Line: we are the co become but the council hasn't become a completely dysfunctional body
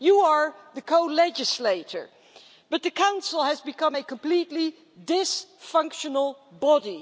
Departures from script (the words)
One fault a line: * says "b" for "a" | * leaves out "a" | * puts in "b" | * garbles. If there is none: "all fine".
* says "you" for "we"
* says "legislator" for "become"
* says "has" for "hasn't"